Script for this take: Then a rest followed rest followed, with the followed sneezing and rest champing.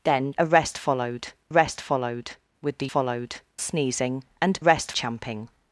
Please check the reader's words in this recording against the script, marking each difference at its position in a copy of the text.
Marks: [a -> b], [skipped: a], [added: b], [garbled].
Then a rest followed rest followed, with the followed sneezing and rest champing.